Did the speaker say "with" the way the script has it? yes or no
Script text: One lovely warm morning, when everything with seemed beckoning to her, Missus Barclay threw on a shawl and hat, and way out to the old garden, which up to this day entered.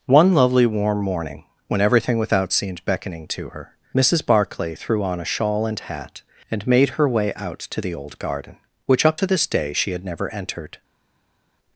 no